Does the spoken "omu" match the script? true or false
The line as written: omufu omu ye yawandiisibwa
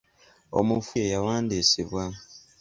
false